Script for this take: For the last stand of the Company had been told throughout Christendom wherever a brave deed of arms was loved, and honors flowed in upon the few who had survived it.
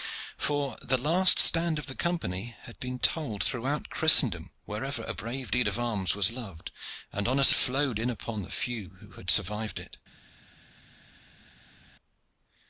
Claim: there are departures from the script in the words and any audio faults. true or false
false